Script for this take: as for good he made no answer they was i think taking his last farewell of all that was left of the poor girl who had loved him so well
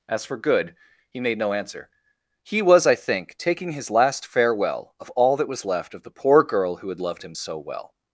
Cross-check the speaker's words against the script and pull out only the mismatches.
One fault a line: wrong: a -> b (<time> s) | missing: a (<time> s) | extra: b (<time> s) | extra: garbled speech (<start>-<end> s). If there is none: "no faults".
wrong: they -> he (2.4 s)